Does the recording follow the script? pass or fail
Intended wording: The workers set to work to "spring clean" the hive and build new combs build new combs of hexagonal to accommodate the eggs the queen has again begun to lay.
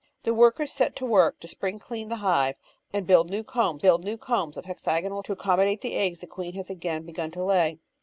pass